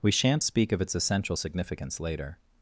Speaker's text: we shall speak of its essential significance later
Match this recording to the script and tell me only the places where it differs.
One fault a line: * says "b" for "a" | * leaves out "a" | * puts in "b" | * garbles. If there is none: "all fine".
* says "shan't" for "shall"